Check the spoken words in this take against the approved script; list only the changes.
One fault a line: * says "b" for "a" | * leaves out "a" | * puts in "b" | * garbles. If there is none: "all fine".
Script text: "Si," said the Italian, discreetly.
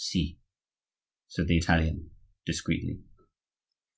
all fine